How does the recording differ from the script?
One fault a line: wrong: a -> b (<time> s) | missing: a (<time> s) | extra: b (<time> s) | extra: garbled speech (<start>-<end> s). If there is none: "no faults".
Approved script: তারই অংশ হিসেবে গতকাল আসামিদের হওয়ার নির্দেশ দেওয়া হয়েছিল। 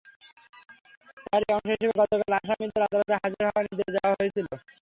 extra: আদালতে হাজির (2.9 s)